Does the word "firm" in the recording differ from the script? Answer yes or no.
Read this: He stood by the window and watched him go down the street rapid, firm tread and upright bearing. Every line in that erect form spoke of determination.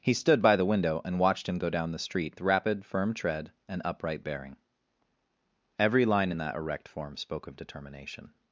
no